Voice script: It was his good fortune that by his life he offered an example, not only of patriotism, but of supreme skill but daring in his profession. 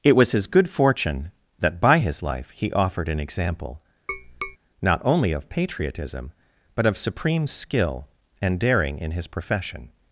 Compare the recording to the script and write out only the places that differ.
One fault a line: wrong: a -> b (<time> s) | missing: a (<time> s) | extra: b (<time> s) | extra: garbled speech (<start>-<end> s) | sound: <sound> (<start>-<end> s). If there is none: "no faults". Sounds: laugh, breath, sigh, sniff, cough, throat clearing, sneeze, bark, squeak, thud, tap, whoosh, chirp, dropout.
sound: tap (4.1-4.6 s)
wrong: but -> and (8.4 s)